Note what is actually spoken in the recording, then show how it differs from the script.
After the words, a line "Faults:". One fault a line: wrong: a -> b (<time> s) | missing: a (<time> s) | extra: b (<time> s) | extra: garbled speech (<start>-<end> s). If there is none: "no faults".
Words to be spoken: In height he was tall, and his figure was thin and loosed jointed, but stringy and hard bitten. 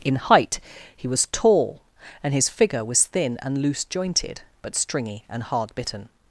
In height he was tall, and his figure was thin and loose jointed, but stringy and hard bitten.
Faults:
wrong: loosed -> loose (3.6 s)